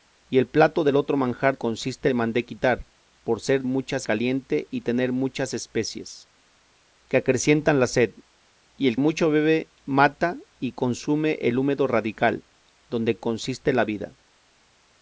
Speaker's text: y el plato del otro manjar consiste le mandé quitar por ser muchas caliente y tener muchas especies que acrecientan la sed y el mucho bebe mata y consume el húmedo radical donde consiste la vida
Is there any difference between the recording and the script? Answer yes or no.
no